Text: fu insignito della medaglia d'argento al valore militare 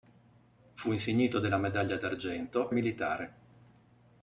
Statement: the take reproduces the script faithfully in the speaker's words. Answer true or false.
false